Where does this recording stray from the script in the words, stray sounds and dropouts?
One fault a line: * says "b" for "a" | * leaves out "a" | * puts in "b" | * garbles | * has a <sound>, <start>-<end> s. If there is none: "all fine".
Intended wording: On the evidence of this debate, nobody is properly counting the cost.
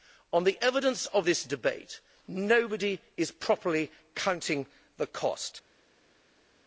all fine